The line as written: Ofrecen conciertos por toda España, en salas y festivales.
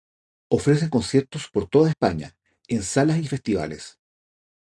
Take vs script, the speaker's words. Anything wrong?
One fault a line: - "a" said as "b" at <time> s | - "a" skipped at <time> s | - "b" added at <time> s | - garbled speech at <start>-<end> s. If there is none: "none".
none